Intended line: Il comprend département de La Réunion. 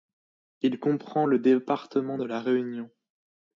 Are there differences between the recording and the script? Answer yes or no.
yes